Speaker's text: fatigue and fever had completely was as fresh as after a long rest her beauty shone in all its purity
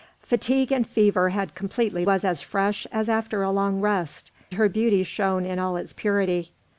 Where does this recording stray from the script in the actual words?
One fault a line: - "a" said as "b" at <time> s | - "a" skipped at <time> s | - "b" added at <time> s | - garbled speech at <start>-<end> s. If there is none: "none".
none